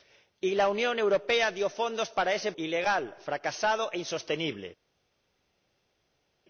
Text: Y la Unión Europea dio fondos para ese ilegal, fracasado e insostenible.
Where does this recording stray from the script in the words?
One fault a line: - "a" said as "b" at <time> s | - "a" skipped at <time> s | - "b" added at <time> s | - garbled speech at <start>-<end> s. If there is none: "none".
none